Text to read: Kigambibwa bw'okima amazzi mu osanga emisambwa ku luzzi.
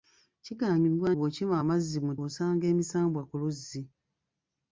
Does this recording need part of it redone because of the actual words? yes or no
no